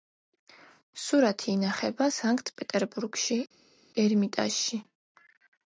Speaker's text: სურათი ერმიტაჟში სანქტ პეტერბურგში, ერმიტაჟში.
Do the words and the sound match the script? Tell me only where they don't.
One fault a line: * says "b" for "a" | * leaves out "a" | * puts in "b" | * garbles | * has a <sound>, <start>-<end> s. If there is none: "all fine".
* says "ინახება" for "ერმიტაჟში"